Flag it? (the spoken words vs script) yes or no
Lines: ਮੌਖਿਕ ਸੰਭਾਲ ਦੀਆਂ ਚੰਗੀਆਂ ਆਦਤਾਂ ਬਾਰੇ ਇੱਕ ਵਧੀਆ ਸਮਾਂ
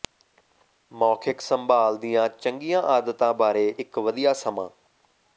no